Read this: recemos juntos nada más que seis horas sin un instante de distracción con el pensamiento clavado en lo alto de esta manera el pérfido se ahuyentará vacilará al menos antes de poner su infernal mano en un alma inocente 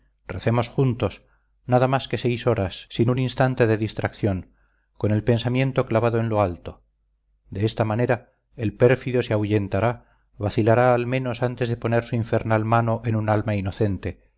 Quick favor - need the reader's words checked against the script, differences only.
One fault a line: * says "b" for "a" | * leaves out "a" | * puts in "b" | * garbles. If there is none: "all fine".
all fine